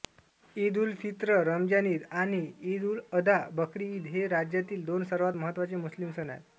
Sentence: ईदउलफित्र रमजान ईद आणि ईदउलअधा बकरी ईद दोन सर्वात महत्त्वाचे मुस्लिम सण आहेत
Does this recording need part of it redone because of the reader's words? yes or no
yes